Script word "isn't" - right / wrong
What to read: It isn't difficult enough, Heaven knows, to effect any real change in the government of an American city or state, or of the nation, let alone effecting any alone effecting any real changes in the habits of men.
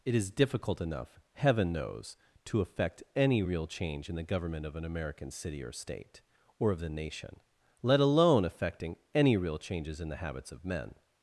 wrong